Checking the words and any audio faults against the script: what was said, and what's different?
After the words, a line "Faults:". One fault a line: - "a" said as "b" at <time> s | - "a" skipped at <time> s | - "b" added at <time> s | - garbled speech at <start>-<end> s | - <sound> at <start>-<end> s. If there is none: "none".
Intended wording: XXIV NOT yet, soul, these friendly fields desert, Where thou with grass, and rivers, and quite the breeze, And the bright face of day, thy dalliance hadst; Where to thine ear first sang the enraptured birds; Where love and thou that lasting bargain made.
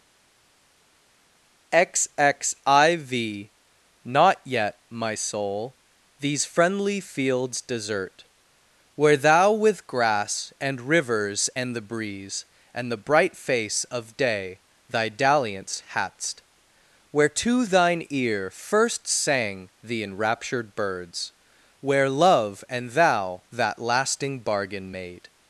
XXIV NOT yet, my soul, these friendly fields desert, Where thou with grass, and rivers, and the breeze, And the bright face of day, thy dalliance hadst; Where to thine ear first sang the enraptured birds; Where love and thou that lasting bargain made.
Faults:
- "my" added at 4.9 s
- "quite" skipped at 11.7 s